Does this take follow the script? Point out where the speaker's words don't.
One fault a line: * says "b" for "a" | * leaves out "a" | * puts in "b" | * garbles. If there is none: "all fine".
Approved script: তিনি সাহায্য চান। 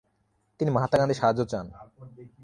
* puts in "মহাত্মা গান্ধীর"